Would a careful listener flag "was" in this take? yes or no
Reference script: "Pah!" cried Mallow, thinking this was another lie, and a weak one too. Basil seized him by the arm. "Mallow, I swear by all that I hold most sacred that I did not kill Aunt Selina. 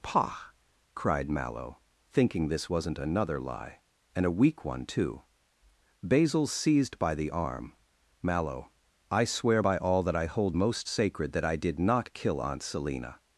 yes